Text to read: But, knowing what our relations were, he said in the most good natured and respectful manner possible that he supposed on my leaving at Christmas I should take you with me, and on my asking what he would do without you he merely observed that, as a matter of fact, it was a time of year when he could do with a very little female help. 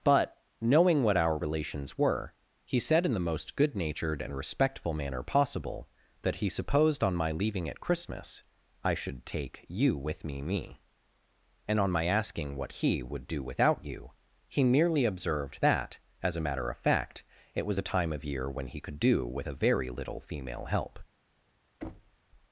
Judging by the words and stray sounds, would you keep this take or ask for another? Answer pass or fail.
fail